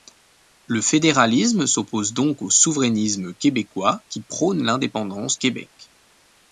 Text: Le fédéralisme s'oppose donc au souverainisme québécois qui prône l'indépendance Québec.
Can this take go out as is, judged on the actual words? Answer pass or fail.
pass